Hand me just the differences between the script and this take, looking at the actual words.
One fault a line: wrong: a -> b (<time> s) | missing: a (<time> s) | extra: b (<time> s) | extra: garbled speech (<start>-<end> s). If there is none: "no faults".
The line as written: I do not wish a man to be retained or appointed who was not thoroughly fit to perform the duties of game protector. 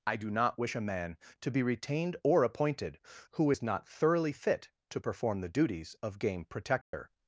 wrong: was -> is (3.5 s)